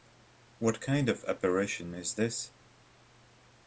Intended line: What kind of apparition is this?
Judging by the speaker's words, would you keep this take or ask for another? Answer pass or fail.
pass